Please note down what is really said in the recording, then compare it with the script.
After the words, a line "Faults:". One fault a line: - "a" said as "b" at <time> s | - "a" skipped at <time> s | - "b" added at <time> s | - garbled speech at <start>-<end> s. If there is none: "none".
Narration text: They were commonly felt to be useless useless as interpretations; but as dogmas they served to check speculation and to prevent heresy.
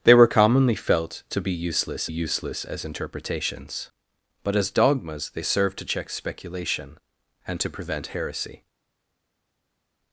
They were commonly felt to be useless useless as interpretations; but as dogmas they served to check speculation and to prevent heresy.
Faults:
none